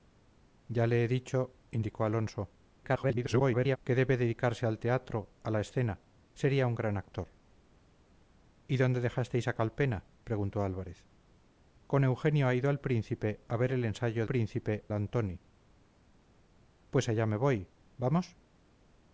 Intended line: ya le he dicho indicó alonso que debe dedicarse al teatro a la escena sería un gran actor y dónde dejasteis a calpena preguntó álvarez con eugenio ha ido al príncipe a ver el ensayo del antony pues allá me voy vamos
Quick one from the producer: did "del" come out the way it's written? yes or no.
no